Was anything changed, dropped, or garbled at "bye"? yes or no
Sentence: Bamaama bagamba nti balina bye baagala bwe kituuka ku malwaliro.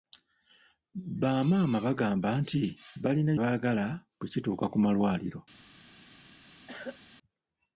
yes